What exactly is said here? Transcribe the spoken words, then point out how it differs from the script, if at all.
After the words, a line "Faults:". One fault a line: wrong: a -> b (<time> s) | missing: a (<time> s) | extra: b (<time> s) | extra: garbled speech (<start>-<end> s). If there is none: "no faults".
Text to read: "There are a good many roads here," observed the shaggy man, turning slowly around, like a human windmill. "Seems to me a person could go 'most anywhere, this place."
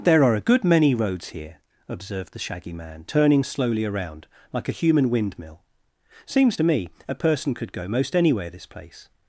"There are a good many roads here," observed the shaggy man, turning slowly around, like a human windmill. "Seems to me a person could go 'most anywhere, this place."
Faults:
no faults